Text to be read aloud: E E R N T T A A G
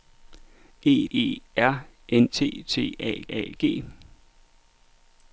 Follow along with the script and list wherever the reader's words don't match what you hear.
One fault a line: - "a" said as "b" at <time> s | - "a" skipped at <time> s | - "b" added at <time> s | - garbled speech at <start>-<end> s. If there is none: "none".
none